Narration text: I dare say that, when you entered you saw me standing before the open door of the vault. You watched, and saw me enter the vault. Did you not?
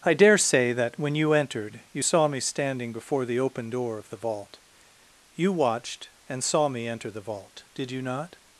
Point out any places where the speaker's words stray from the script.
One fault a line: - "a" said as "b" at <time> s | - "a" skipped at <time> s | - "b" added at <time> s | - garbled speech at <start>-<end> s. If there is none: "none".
none